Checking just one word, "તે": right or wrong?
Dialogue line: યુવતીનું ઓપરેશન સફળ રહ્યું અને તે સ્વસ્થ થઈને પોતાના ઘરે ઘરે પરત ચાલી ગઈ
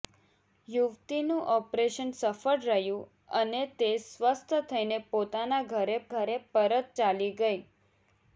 right